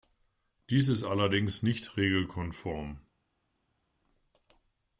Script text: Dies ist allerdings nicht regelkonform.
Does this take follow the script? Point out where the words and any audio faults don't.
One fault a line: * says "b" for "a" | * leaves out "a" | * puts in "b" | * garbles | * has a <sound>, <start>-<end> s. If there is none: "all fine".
all fine